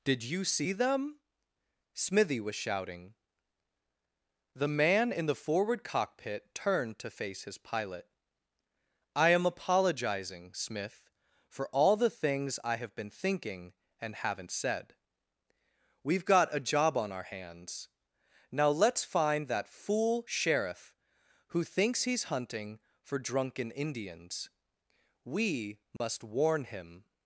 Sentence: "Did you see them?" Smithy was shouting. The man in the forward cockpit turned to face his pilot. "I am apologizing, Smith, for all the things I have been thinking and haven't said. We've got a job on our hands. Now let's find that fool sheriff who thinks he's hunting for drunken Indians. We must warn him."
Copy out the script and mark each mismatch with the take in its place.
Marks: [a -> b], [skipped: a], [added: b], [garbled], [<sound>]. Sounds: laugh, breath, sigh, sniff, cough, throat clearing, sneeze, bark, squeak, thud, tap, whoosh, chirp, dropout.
"Did you see them?" Smithy was shouting. The man in the forward cockpit turned to face his pilot. "I am apologizing, Smith, for all the things I have been thinking and haven't said. We've got a job on our hands. Now let's find that fool sheriff who thinks he's hunting for drunken Indians. We must [dropout] warn him."